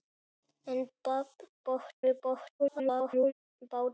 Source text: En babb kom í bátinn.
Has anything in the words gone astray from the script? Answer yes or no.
yes